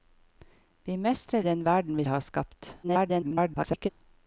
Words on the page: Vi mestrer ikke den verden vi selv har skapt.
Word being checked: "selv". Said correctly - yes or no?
no